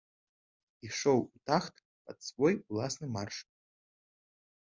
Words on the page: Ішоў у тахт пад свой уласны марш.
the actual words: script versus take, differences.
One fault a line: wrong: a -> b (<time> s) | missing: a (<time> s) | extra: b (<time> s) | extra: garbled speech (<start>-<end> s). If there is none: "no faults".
no faults